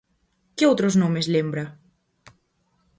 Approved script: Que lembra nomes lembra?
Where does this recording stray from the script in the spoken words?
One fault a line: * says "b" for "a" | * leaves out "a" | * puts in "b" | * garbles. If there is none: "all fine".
* says "outros" for "lembra"